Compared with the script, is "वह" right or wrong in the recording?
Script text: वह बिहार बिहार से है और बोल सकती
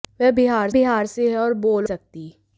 right